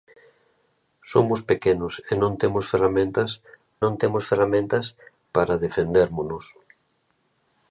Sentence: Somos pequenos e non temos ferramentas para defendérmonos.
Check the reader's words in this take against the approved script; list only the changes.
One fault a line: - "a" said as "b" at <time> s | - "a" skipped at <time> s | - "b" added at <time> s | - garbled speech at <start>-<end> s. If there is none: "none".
- "non temos ferramentas" added at 3.8 s